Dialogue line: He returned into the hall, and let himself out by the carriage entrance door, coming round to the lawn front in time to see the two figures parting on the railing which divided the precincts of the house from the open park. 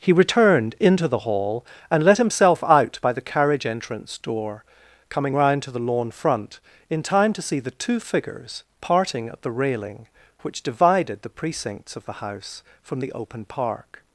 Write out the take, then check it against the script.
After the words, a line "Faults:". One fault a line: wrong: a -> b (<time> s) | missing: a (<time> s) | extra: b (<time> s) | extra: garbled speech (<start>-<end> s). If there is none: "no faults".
He returned into the hall, and let himself out by the carriage entrance door, coming round to the lawn front in time to see the two figures parting at the railing which divided the precincts of the house from the open park.
Faults:
wrong: on -> at (9.3 s)